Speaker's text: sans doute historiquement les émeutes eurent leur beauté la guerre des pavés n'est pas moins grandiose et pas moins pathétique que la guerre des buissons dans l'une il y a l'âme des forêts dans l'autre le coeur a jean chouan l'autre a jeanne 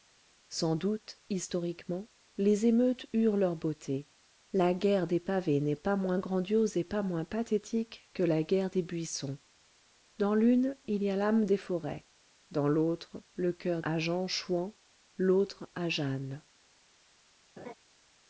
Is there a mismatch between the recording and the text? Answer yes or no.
no